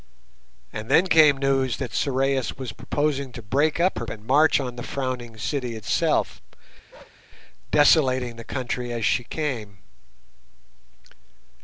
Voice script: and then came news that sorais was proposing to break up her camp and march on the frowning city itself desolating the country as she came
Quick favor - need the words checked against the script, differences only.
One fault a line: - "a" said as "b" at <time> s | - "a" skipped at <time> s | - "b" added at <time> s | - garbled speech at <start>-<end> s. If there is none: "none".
- "camp" skipped at 4.1 s